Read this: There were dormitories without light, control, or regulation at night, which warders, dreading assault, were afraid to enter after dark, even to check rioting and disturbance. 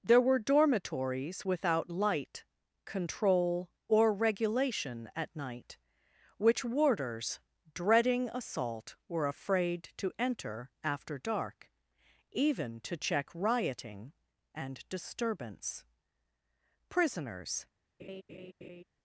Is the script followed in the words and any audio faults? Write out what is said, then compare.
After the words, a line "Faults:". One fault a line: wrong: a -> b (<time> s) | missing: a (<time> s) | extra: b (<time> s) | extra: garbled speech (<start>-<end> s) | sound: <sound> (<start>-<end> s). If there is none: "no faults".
There were dormitories without light, control, or regulation at night, which warders, dreading assault, were afraid to enter after dark, even to check rioting and disturbance. Prisoners
Faults:
extra: Prisoners (16.9 s)
sound: laugh (18.0-18.8 s)